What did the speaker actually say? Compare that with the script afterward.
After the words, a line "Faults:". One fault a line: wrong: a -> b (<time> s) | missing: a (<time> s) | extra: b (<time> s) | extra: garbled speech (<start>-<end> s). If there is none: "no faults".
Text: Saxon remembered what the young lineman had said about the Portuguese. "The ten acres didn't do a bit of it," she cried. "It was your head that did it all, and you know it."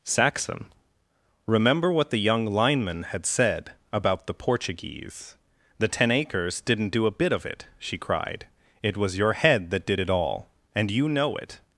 Saxon remember what the young lineman had said about the Portuguese. "The ten acres didn't do a bit of it," she cried. "It was your head that did it all, and you know it."
Faults:
wrong: remembered -> remember (1.5 s)